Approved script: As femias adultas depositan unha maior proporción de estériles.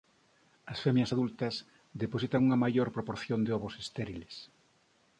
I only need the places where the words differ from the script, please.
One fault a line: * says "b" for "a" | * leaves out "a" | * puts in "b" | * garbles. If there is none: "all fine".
* puts in "ovos"